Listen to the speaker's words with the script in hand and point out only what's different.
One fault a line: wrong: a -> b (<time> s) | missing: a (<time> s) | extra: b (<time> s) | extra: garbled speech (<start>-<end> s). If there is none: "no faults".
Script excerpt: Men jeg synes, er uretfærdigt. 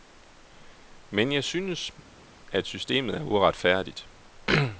extra: at systemet (2.5 s)